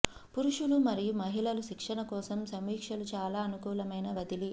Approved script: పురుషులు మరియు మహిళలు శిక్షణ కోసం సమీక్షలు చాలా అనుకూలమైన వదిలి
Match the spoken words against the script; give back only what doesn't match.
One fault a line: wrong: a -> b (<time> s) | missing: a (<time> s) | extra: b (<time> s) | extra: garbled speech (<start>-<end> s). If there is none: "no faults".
no faults